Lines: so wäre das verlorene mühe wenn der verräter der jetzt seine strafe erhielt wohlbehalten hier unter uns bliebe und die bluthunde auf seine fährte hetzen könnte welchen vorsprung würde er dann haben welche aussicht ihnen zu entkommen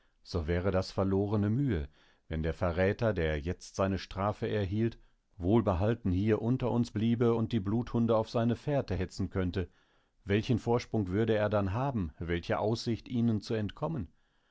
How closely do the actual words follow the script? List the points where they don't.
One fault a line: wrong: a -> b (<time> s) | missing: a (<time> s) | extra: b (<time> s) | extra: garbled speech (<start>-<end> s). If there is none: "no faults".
no faults